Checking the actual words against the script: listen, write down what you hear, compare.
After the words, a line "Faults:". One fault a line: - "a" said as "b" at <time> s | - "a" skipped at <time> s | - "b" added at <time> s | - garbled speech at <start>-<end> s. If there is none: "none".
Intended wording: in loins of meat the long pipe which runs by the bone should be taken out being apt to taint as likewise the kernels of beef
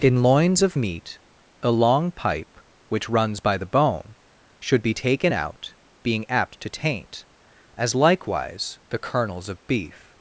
in loins of meat a long pipe which runs by the bone should be taken out being apt to taint as likewise the kernels of beef
Faults:
- "the" said as "a" at 1.6 s